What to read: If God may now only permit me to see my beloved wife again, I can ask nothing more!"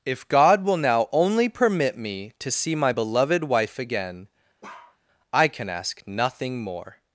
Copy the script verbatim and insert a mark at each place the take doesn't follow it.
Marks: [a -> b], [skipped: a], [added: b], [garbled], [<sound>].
If God [may -> will] now only permit me to see my beloved wife again, [bark] I can ask nothing more!"